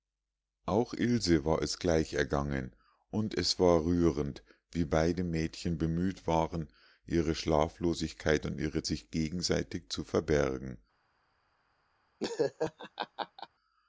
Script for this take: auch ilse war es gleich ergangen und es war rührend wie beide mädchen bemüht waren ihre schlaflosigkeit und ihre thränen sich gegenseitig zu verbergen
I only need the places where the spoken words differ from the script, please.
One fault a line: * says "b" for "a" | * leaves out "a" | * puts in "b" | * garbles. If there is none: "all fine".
* leaves out "thränen"